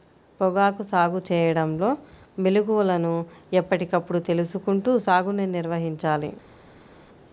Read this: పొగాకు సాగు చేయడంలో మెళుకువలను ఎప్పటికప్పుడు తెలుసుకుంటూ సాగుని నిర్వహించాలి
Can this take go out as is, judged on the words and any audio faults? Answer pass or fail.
pass